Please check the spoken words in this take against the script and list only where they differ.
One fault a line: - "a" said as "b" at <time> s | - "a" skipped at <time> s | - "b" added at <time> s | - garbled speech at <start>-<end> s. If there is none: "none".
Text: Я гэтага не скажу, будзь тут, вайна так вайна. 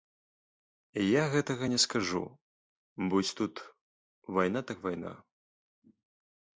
none